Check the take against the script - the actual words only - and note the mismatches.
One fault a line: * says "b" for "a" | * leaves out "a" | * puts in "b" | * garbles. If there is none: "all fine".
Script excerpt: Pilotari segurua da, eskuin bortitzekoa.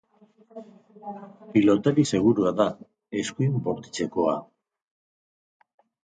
all fine